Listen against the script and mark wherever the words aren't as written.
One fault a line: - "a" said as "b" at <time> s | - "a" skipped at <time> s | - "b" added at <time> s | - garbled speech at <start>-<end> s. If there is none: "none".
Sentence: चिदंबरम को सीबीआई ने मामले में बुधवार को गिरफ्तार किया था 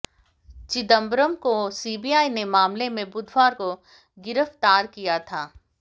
none